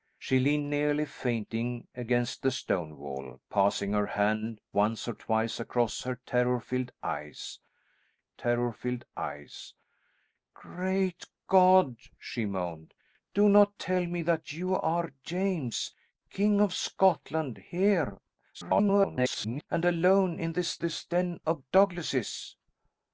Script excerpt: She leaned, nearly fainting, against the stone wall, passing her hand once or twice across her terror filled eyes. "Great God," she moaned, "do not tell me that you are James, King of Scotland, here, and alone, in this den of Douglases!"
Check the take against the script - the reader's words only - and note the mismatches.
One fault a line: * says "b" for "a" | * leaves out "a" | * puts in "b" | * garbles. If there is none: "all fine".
* puts in "terror filled eyes"
* garbles
* puts in "this"